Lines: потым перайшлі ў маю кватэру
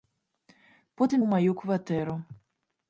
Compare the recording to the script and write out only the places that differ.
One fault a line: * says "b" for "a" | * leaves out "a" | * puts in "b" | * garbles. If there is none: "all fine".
* leaves out "перайшлі"